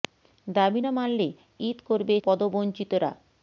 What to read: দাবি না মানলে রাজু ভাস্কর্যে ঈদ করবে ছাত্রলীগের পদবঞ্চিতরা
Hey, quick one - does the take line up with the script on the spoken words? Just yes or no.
no